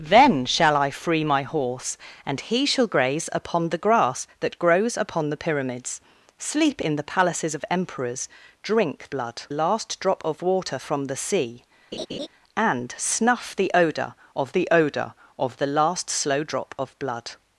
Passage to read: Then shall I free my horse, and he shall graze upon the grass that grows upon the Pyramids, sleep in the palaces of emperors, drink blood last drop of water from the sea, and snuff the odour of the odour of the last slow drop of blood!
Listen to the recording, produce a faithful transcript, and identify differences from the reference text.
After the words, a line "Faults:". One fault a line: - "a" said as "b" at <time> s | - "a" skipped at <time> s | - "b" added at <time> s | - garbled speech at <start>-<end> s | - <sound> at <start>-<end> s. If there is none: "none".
Then shall I free my horse, and he shall graze upon the grass that grows upon the Pyramids, sleep in the palaces of emperors, drink blood last drop of water from the sea, and snuff the odour of the odour of the last slow drop of blood!
Faults:
- laugh at 11.9-12.3 s